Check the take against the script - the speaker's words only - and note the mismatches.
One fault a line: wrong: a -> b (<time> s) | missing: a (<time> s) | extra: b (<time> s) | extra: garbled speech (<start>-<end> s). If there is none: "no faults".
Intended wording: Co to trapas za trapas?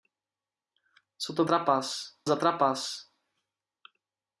no faults